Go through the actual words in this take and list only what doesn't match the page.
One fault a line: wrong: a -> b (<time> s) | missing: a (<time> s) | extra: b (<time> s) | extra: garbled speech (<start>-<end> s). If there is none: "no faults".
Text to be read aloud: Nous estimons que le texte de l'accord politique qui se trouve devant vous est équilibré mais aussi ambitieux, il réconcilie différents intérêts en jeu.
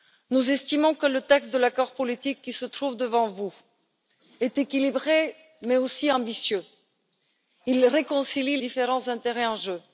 no faults